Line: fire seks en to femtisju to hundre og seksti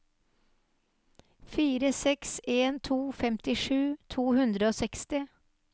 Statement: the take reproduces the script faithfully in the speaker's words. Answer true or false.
true